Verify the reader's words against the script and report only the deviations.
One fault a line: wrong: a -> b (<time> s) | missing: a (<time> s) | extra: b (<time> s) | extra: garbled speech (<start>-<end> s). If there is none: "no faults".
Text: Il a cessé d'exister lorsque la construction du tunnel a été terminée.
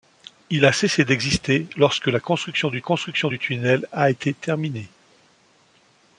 extra: construction du (2.8 s)